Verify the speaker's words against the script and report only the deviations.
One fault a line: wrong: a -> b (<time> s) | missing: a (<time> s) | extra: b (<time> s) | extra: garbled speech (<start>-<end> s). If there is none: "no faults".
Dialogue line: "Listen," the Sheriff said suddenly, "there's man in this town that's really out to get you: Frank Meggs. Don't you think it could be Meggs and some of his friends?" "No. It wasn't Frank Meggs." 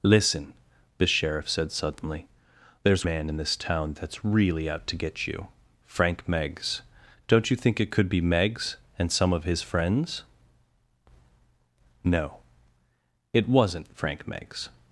no faults